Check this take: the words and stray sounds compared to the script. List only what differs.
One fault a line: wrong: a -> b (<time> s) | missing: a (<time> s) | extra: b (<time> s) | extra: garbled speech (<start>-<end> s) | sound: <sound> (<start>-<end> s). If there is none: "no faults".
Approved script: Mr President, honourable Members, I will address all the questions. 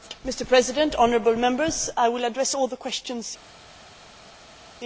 no faults